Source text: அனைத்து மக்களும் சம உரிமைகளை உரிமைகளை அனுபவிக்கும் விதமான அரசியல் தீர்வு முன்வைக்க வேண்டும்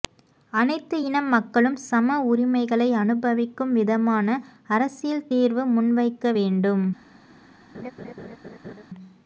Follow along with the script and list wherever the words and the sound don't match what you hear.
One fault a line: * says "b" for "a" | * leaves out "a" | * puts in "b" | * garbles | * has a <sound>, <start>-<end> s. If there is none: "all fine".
* puts in "இன"
* leaves out "உரிமைகளை"
* has a laugh, 7.7-8.8 s